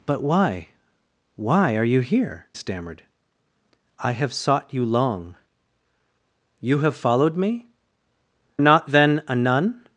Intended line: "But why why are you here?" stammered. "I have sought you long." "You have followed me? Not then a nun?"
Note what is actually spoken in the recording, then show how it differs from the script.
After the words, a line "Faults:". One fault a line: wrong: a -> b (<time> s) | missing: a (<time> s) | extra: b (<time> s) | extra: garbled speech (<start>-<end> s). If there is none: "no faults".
"But why why are you here?" stammered. "I have sought you long." "You have followed me? Not then a nun?"
Faults:
no faults